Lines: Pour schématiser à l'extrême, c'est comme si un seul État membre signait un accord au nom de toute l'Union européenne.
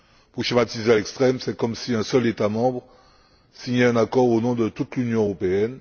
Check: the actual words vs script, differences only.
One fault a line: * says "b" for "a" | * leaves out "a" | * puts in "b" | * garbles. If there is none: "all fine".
all fine